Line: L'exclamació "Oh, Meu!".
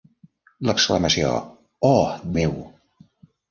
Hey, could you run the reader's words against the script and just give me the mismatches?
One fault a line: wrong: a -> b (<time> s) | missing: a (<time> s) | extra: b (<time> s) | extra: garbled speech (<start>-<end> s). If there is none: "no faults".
no faults